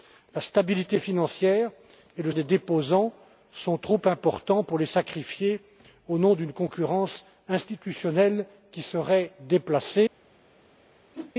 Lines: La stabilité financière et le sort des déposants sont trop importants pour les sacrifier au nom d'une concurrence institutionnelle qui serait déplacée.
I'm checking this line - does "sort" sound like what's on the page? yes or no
no